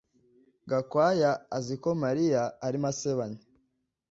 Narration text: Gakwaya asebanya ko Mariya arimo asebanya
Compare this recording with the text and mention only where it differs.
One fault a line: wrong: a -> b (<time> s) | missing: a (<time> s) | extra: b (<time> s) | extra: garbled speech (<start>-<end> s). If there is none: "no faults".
wrong: asebanya -> azi (1.6 s)